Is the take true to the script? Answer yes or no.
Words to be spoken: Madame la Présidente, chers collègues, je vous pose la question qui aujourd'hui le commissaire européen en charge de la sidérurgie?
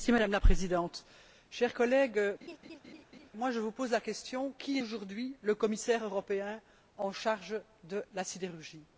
yes